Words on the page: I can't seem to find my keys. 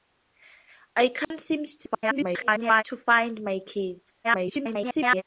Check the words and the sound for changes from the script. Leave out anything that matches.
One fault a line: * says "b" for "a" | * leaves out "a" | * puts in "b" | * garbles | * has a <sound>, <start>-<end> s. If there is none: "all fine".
* has a dropout, 1.2-1.3 s
* garbles
* garbles